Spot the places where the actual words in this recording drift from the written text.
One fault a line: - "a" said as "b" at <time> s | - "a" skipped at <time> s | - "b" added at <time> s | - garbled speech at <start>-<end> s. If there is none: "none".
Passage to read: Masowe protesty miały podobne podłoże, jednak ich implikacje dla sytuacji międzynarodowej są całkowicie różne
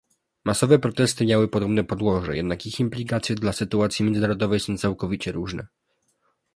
none